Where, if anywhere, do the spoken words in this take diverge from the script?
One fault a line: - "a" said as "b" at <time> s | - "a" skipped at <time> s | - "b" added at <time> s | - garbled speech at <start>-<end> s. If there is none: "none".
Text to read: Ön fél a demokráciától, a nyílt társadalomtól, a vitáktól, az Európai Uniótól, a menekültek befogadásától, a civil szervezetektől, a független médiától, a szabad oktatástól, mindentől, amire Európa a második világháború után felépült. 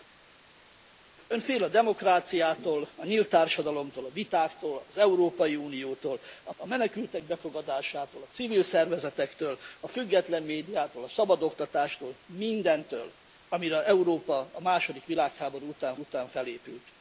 - "a" added at 6.5 s
- "után" added at 16.0 s